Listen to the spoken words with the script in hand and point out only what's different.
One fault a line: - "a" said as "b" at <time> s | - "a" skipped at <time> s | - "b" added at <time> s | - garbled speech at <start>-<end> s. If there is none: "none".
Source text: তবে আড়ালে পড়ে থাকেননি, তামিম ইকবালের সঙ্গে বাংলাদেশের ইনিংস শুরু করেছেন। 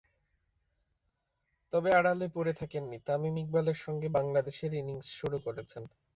none